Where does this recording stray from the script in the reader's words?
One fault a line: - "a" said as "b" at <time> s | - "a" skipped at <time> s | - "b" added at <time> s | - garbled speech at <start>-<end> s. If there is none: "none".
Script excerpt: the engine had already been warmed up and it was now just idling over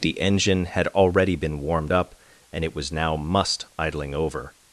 - "just" said as "must" at 3.2 s